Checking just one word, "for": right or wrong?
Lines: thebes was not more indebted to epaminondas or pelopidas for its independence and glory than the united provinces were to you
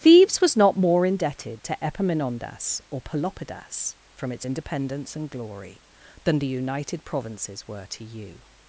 wrong